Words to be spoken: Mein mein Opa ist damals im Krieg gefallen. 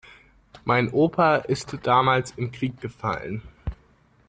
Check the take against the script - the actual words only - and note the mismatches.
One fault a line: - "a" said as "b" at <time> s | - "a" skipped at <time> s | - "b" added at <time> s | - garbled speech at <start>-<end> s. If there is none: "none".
- "mein" skipped at 0.9 s